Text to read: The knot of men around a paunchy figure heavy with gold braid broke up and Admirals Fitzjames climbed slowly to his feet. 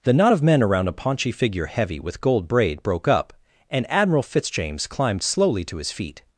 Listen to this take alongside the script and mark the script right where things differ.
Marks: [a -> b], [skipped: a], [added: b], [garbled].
The knot of men around a paunchy figure heavy with gold braid broke up and [Admirals -> Admiral] Fitzjames climbed slowly to his feet.